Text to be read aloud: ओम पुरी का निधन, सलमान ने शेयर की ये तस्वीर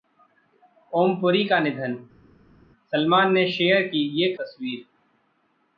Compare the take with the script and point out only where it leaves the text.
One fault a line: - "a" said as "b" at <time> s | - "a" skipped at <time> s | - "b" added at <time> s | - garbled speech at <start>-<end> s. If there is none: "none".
none